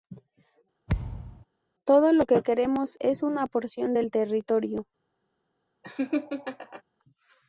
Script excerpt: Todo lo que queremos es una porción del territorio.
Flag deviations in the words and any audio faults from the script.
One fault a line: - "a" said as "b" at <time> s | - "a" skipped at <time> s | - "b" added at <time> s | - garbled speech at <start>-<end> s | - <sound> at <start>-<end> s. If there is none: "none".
- thud at 0.9-1.5 s
- laugh at 5.8-6.8 s